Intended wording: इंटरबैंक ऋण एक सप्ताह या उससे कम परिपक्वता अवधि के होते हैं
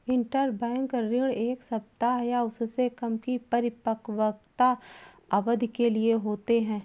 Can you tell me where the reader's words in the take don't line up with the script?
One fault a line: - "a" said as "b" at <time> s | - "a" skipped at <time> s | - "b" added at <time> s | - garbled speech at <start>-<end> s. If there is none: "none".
- "की" added at 3.2 s
- "लिए" added at 5.9 s